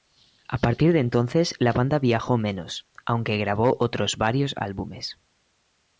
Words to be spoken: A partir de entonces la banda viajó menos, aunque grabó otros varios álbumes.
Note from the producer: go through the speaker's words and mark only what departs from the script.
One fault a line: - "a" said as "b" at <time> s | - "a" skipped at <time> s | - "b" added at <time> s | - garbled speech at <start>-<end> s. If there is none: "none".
none